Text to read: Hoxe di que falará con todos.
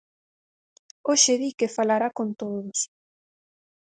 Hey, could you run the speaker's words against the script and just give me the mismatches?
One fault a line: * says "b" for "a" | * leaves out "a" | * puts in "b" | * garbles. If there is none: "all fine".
all fine